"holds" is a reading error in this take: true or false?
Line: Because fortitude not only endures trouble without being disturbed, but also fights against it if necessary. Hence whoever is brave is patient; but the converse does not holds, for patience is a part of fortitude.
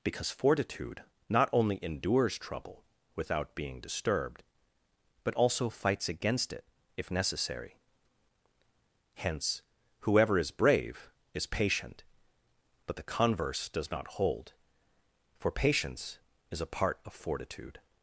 true